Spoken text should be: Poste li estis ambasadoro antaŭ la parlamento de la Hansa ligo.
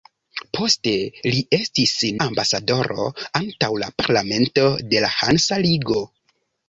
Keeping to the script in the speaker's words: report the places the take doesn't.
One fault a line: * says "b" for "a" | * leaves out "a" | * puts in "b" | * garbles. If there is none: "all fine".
all fine